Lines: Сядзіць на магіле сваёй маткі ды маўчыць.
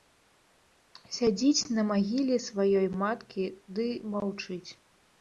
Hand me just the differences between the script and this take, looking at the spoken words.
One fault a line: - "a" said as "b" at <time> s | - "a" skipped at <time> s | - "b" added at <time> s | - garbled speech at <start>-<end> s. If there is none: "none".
none